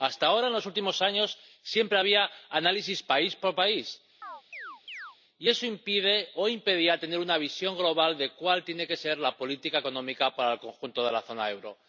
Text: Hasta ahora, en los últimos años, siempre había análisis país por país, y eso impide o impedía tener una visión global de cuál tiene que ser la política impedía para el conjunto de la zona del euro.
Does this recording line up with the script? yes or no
no